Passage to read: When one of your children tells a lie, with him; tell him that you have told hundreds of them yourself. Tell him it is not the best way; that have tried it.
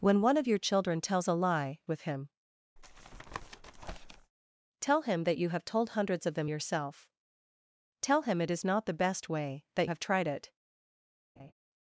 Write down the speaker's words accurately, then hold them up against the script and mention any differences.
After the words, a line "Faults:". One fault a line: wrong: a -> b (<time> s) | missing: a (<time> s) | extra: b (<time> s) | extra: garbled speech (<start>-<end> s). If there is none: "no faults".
When one of your children tells a lie, with him; tell him that you have told hundreds of them yourself. Tell him it is not the best way; that have tried it.
Faults:
no faults